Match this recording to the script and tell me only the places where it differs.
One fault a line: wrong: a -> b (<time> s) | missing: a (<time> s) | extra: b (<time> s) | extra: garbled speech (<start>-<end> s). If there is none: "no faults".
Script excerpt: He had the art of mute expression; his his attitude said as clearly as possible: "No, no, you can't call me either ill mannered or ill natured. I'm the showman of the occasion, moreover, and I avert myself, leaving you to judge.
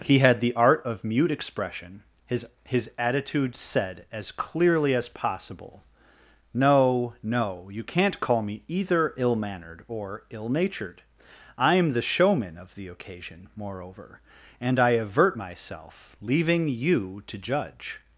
no faults